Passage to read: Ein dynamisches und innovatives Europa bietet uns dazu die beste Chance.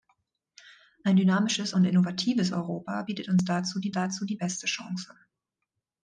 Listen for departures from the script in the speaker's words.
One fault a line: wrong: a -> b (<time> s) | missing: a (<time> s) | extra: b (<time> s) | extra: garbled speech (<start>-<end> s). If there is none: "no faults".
extra: dazu die (3.9 s)